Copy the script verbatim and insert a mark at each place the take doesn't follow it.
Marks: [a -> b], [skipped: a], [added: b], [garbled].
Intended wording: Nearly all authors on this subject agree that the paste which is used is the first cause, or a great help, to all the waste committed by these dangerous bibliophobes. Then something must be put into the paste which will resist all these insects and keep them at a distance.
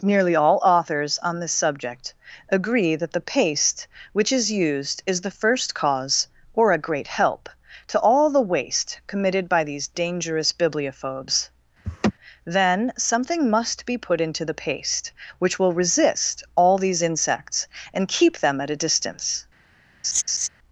Nearly all authors on this subject agree that the paste which is used is the first cause, or a great help, to all the waste committed by these dangerous bibliophobes. Then something must be put into the paste which will resist all these insects and keep them at a distance.